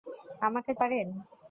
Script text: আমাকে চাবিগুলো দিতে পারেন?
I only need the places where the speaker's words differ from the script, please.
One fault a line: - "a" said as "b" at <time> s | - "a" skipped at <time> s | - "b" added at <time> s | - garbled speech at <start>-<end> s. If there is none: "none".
- "চাবিগুলো দিতে" skipped at 0.7 s